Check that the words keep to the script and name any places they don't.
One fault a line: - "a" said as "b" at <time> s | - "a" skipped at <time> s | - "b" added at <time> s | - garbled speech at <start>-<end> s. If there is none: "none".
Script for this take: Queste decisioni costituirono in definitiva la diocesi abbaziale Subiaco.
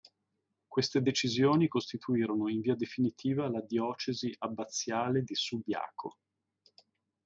- "via" added at 2.6 s
- "di" added at 5.2 s